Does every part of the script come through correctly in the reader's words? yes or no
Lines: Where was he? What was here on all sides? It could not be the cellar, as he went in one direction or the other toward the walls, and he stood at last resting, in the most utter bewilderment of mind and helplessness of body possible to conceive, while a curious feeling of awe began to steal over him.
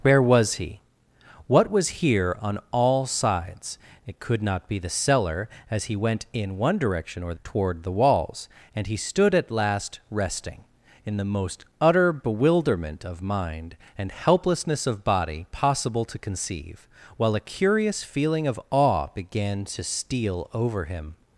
no